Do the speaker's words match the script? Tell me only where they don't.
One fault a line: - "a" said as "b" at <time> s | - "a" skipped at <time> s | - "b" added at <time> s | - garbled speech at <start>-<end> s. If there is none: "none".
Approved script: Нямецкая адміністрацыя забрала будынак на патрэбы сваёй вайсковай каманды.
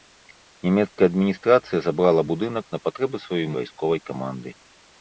none